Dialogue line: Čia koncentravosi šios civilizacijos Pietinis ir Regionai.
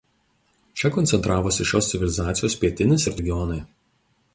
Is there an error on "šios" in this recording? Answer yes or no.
no